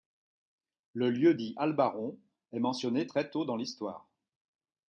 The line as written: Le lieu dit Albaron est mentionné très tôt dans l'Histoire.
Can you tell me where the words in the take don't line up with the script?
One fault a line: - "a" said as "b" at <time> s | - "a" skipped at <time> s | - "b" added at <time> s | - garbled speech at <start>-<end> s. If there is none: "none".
none